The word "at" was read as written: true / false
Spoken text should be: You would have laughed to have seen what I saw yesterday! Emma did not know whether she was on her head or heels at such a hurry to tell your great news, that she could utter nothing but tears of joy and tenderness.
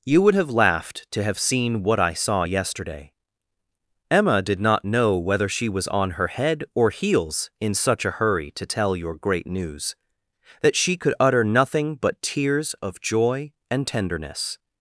false